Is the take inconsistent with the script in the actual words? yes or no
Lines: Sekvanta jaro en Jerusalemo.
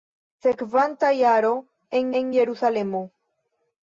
yes